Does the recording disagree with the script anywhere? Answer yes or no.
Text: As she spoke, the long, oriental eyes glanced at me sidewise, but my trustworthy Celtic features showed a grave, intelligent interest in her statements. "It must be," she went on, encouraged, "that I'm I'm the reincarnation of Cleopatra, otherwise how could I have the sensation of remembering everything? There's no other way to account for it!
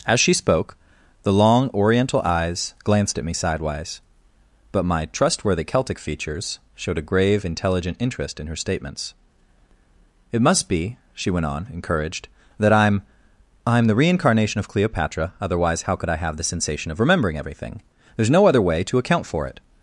no